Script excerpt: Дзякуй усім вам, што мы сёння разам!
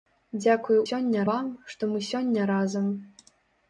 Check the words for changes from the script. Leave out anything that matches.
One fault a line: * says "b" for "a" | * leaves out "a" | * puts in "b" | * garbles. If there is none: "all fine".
* says "сёння" for "усім"